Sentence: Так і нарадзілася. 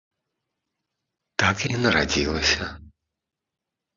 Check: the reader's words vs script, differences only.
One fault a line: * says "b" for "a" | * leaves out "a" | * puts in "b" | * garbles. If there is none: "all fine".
all fine